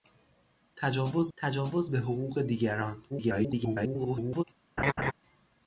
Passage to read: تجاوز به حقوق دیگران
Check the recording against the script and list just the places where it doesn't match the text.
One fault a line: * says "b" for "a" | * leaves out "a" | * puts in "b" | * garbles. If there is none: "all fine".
* puts in "تجاوز"
* garbles